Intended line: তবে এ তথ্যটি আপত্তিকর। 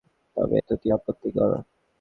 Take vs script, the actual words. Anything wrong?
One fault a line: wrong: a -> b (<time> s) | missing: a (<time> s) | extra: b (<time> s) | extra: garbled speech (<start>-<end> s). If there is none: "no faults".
missing: এ (0.6 s)